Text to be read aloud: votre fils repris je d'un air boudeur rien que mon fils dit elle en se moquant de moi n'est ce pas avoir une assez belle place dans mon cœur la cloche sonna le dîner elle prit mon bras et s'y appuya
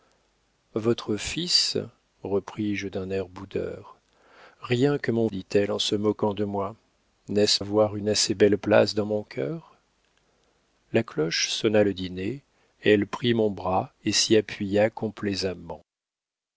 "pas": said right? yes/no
no